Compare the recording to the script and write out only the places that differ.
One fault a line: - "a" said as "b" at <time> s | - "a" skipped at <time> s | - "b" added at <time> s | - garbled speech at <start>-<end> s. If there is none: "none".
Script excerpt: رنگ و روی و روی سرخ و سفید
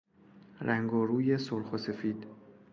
- "و روی" skipped at 1.4 s